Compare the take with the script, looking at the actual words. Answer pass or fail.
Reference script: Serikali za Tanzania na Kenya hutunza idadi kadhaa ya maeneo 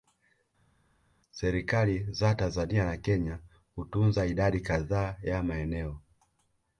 pass